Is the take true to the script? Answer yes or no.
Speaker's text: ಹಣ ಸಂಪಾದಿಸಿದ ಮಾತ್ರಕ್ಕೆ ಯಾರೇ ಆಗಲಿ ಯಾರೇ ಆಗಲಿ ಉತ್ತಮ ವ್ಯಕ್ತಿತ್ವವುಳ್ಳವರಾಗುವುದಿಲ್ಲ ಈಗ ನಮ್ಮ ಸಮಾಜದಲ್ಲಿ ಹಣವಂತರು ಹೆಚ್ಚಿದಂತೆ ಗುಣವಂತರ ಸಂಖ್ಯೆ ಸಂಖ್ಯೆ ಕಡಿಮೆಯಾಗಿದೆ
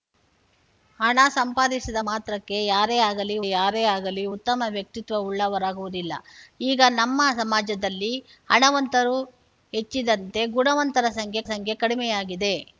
yes